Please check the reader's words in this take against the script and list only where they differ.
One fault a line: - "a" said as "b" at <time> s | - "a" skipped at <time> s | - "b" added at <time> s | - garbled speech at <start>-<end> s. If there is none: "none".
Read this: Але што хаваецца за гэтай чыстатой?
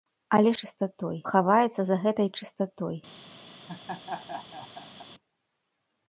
- "што" said as "чыстатой" at 0.6 s